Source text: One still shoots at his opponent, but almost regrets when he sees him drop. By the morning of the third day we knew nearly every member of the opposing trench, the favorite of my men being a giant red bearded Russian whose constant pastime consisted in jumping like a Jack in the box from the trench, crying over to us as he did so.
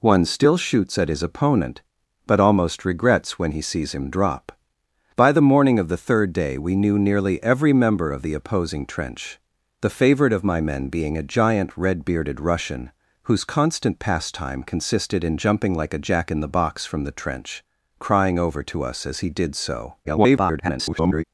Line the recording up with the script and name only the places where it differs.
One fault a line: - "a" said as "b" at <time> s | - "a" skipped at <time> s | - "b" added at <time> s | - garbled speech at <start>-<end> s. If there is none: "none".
- garbled speech at 20.0-21.2 s